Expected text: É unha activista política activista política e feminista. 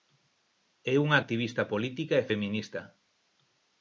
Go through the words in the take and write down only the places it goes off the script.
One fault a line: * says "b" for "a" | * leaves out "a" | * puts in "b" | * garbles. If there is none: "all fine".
* leaves out "activista política"